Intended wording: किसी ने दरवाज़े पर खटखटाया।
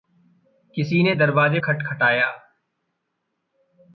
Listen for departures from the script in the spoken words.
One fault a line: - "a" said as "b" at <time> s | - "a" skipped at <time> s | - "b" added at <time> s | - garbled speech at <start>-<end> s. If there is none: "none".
- "पर" skipped at 1.6 s